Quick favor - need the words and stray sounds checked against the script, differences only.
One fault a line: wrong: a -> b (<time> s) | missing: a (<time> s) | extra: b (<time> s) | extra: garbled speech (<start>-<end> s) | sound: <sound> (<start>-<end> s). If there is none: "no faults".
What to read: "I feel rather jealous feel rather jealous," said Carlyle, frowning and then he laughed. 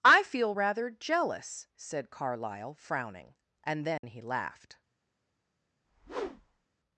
missing: feel rather jealous (1.7 s)
sound: dropout (4.0-4.0 s)
sound: whoosh (5.8-6.7 s)